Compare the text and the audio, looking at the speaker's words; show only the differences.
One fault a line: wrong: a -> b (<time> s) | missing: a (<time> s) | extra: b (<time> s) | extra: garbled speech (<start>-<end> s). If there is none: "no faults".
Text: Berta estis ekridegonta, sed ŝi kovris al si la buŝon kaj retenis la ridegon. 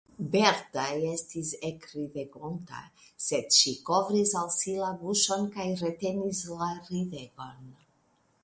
no faults